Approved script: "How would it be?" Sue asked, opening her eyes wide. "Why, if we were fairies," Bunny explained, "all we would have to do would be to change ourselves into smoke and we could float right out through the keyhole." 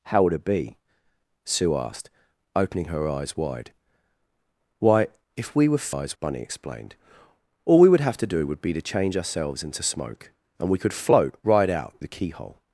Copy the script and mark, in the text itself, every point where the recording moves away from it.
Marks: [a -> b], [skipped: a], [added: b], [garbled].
"How would it be?" Sue asked, opening her eyes wide. "Why, if we were [fairies," -> eyes] Bunny explained, "all we would have to do would be to change ourselves into smoke and we could float right out [skipped: through] the keyhole."